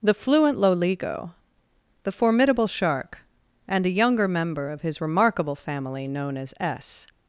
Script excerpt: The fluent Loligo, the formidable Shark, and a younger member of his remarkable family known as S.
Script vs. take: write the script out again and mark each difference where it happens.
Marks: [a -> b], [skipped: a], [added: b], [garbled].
The fluent Loligo, the formidable Shark, and a younger member of his remarkable family known as S.